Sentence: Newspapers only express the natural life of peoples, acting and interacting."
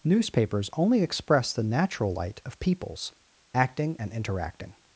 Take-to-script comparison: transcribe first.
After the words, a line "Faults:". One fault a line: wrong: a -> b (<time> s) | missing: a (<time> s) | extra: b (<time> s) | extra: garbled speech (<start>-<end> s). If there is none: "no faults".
Newspapers only express the natural light of peoples, acting and interacting."
Faults:
wrong: life -> light (2.1 s)